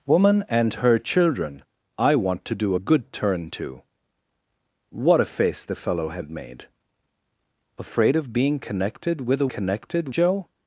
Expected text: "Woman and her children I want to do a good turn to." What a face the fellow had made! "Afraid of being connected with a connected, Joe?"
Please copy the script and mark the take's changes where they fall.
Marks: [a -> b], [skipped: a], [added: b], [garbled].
"Woman and her children I want to do a good turn to." What a face the fellow had made! "Afraid of being connected with a connected, Joe?"